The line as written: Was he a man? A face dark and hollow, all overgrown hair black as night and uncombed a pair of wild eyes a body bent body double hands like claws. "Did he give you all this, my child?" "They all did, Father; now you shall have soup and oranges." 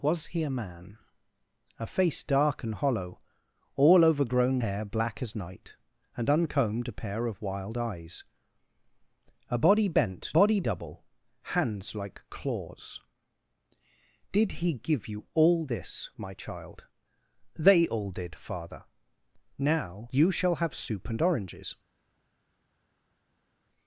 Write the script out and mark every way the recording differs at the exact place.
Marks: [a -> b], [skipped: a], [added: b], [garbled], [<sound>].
Was he a man? A face dark and hollow, all overgrown hair black as night and uncombed a pair of wild eyes a body bent body double hands like claws. "Did he give you all this, my child?" "They all did, Father; now you shall have soup and oranges."